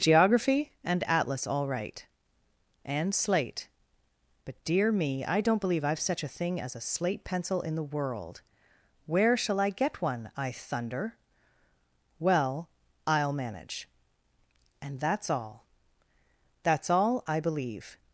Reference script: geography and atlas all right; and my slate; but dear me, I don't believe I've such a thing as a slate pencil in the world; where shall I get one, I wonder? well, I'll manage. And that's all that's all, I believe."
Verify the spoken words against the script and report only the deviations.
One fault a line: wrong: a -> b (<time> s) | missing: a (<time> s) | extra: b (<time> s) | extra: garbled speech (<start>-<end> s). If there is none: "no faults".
missing: my (3.1 s)
wrong: wonder -> thunder (10.5 s)